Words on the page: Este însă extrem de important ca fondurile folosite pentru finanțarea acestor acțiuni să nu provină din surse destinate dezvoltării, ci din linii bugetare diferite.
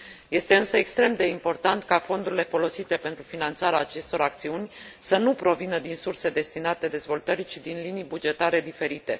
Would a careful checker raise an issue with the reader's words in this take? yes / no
no